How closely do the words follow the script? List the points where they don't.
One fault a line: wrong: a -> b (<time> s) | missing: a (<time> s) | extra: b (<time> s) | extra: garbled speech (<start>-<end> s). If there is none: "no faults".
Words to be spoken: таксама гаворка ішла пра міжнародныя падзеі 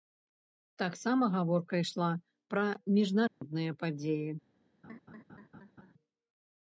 no faults